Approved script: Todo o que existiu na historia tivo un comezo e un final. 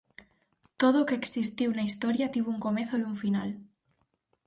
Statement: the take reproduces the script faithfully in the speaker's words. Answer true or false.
true